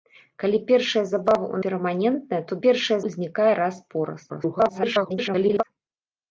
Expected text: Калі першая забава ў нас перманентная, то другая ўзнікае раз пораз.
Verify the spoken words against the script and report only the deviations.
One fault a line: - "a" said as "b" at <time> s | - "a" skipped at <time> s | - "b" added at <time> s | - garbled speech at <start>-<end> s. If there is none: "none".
- "нас" skipped at 1.6 s
- "другая" said as "першая" at 2.6 s
- garbled speech at 4.3-5.6 s